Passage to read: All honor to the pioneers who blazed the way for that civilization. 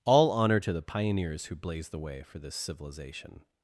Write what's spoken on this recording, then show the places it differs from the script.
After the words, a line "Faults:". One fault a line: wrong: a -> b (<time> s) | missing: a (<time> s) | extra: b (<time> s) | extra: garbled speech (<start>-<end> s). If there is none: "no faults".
All honor to the pioneers who blazed the way for this civilization.
Faults:
wrong: that -> this (2.4 s)